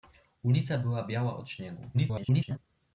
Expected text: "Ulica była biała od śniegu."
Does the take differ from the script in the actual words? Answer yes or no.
yes